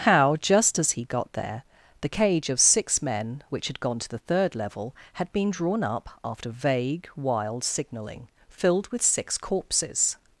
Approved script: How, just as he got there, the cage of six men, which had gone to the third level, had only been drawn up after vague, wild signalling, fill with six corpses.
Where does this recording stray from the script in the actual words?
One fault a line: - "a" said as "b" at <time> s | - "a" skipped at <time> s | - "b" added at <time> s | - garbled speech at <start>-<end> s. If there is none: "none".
- "only" skipped at 5.3 s
- "fill" said as "filled" at 8.5 s